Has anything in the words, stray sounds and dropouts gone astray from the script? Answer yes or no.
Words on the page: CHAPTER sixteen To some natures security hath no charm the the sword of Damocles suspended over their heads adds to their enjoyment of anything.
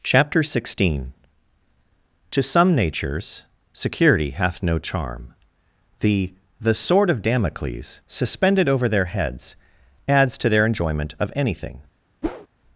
yes